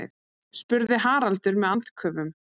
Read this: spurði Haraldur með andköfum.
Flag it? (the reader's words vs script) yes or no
no